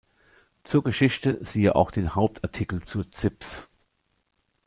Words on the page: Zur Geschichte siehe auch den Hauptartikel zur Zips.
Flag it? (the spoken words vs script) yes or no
no